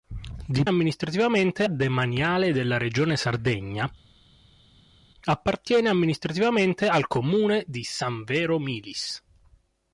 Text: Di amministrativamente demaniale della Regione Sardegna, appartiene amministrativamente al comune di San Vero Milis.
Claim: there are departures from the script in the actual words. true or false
false